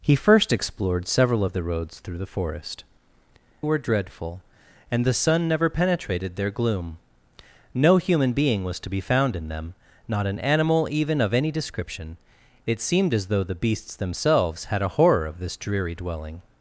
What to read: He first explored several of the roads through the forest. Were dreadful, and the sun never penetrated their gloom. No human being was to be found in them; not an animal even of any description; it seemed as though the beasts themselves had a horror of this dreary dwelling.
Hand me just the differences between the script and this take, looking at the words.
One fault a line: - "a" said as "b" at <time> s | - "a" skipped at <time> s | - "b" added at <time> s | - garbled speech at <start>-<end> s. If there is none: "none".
none